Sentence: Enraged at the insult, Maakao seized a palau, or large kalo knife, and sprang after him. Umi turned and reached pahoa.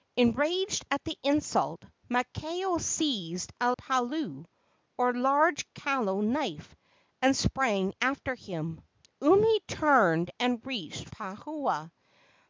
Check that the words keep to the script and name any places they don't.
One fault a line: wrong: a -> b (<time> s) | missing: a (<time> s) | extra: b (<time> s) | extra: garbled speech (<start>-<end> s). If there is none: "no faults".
no faults